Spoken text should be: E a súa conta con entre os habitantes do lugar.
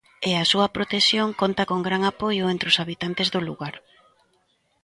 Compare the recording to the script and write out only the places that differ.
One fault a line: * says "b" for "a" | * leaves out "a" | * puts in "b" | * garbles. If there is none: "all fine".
* puts in "protección"
* puts in "gran apoio"